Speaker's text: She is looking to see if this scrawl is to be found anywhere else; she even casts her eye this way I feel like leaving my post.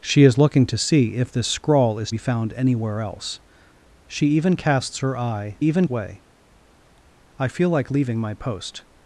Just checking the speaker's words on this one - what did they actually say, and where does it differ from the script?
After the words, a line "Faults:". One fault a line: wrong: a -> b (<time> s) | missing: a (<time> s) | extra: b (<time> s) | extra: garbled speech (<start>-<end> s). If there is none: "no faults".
She is looking to see if this scrawl is be found anywhere else; she even casts her eye even way I feel like leaving my post.
Faults:
missing: to (2.1 s)
wrong: this -> even (5.6 s)